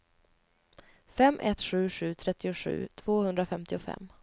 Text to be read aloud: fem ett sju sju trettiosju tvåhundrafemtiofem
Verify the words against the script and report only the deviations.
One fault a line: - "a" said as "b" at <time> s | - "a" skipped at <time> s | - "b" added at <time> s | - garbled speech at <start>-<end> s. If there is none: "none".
none